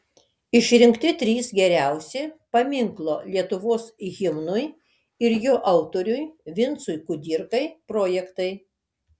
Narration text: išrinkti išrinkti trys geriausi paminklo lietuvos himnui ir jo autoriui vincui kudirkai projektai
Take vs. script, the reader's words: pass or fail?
fail